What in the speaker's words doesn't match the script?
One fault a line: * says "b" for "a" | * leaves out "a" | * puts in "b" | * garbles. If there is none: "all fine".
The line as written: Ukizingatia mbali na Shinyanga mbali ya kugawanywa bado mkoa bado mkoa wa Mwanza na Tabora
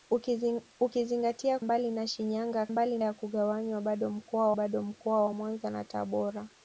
all fine